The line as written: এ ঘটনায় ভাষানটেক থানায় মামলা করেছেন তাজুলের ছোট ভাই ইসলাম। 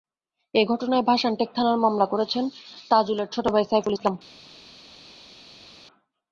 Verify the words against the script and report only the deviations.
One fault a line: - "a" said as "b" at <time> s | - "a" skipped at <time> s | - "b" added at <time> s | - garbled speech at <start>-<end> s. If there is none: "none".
- "সাইফুল" added at 3.7 s